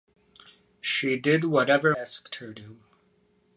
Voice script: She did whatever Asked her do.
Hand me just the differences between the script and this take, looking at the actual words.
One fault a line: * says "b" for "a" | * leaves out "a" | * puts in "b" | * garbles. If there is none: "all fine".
all fine